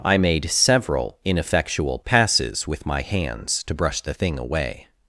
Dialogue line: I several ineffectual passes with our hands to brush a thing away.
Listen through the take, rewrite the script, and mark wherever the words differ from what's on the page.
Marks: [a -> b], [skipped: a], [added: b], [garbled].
I [added: made] several ineffectual passes with [our -> my] hands to brush [a -> the] thing away.